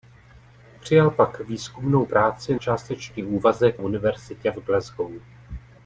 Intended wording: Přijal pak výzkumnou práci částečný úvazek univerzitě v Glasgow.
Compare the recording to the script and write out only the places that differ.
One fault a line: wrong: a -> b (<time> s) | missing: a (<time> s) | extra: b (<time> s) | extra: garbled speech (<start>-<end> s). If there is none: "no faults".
no faults